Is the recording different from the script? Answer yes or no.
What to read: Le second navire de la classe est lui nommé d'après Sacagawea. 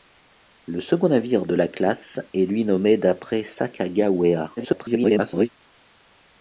yes